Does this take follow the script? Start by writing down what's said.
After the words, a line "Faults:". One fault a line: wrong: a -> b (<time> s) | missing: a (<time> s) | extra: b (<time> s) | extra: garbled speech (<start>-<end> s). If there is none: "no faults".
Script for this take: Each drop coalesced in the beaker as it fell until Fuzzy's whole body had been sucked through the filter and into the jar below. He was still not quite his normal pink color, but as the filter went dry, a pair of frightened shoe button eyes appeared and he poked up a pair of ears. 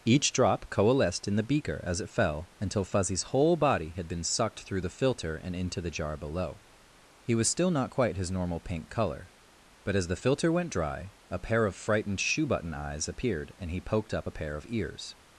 Each drop coalesced in the beaker as it fell until Fuzzy's whole body had been sucked through the filter and into the jar below. He was still not quite his normal pink color, but as the filter went dry, a pair of frightened shoe button eyes appeared and he poked up a pair of ears.
Faults:
no faults